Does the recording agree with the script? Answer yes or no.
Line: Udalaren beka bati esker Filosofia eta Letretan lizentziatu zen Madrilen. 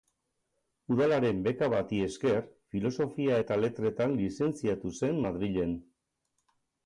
yes